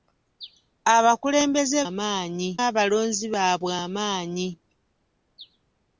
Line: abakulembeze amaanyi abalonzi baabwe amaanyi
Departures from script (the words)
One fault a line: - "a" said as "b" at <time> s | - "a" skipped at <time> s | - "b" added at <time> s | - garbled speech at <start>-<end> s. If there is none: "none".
none